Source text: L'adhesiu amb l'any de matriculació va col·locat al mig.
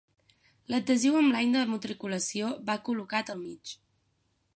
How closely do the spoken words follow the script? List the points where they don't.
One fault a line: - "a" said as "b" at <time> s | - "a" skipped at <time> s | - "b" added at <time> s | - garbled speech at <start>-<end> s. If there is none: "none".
none